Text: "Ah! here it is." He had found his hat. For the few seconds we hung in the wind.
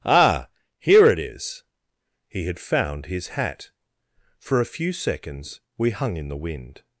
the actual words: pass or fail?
fail